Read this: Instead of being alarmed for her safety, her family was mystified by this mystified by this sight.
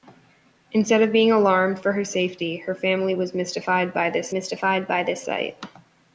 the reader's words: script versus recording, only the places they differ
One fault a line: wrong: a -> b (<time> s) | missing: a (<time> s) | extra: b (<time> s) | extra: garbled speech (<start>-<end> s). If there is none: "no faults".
no faults